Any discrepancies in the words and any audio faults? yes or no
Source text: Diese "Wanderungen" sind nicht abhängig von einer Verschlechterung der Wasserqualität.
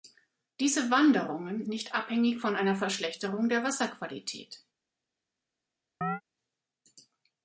yes